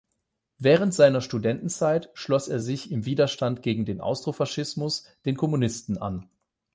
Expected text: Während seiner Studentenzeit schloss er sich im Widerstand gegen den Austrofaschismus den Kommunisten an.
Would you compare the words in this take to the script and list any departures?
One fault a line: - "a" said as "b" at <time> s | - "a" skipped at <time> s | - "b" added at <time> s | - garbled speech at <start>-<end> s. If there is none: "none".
none